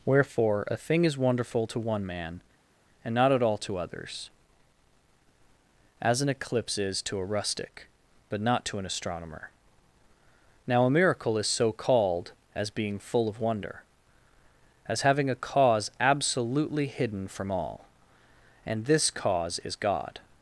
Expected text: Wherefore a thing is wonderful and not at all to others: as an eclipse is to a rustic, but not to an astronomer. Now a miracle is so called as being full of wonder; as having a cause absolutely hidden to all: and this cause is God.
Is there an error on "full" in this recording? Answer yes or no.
no